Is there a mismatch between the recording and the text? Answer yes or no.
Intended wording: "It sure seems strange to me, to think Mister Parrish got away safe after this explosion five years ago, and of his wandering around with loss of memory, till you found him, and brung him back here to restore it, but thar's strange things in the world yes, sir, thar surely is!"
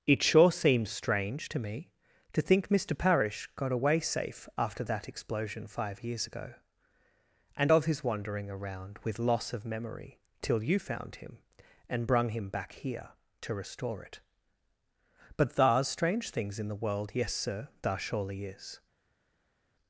yes